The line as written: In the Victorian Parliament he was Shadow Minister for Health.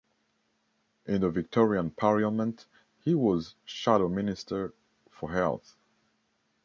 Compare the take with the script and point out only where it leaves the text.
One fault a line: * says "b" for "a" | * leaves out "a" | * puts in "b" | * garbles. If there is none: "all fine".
all fine